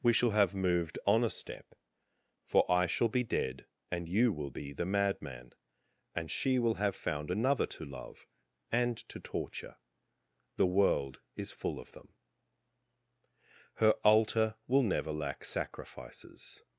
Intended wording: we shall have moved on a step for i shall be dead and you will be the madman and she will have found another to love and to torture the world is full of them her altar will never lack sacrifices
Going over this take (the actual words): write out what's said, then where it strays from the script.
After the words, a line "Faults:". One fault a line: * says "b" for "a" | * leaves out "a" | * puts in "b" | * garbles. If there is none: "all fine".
we shall have moved on a step for i shall be dead and you will be the madman and she will have found another to love and to torture the world is full of them her altar will never lack sacrifices
Faults:
all fine